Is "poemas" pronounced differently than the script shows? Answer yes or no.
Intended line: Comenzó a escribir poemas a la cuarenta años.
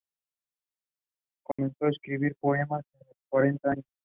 no